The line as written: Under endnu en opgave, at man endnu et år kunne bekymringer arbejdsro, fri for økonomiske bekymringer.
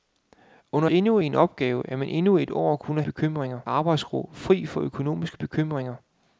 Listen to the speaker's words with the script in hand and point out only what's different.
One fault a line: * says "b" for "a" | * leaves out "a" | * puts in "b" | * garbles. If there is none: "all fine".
all fine